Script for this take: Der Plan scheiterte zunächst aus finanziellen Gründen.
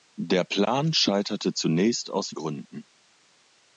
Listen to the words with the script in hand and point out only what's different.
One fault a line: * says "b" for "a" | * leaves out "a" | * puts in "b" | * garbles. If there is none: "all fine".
* leaves out "finanziellen"